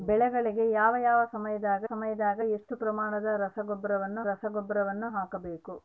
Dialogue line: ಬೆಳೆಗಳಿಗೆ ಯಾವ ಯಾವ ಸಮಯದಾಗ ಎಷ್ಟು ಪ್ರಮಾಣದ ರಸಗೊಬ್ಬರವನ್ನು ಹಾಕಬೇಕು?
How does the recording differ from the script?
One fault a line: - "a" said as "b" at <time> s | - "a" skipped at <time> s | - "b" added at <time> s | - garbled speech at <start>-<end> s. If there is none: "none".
- "ಸಮಯದಾಗ" added at 1.9 s
- "ರಸಗೊಬ್ಬರವನ್ನು" added at 4.2 s